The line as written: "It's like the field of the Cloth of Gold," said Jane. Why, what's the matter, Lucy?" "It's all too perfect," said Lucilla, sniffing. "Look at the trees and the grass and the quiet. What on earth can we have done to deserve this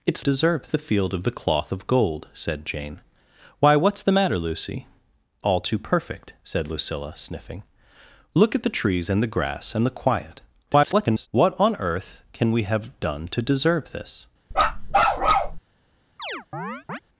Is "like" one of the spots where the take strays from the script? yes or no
yes